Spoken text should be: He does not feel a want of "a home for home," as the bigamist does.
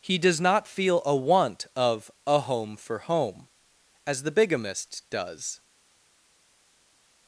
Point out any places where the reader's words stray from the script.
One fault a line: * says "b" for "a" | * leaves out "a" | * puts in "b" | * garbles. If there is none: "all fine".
all fine